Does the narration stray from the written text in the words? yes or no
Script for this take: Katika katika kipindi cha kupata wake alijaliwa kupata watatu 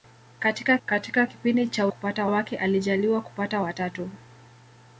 no